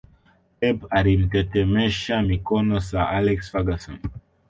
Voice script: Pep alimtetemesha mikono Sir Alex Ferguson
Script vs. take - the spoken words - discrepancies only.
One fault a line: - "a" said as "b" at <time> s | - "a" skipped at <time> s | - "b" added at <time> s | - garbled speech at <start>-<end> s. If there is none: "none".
none